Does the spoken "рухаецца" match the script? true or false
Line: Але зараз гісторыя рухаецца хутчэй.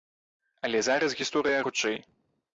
false